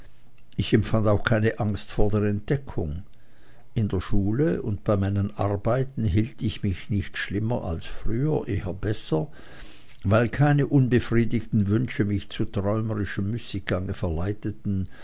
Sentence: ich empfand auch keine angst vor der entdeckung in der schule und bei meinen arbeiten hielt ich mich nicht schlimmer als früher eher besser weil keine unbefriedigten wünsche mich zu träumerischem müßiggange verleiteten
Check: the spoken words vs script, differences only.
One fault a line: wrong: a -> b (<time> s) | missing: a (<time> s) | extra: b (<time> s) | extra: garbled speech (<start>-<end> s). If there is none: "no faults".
no faults